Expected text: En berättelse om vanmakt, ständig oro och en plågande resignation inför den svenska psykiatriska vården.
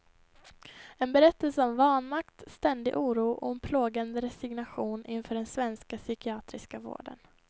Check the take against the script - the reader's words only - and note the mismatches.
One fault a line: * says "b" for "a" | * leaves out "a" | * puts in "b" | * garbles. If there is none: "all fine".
all fine